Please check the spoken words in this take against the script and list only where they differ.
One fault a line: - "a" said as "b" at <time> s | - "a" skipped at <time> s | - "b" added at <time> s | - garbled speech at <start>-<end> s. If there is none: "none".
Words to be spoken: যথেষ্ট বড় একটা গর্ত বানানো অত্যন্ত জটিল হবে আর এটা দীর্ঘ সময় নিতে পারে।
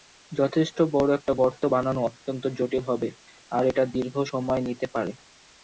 none